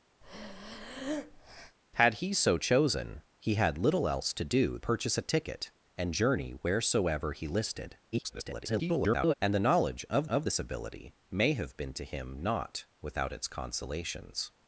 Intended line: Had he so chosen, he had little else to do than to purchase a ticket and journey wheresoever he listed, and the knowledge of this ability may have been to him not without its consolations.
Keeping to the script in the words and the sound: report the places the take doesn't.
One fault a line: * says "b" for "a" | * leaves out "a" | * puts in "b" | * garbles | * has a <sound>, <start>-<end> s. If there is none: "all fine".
* has a breath, 0.2-1.8 s
* leaves out "than to"
* garbles
* puts in "of"